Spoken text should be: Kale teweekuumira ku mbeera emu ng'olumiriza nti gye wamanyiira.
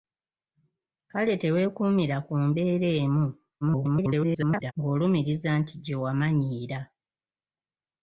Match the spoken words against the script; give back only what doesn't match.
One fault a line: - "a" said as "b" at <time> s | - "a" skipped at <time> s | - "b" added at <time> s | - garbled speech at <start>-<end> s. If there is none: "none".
- garbled speech at 3.6-4.7 s